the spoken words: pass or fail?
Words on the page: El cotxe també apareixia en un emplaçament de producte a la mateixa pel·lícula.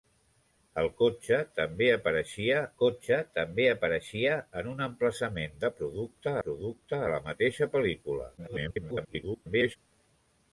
fail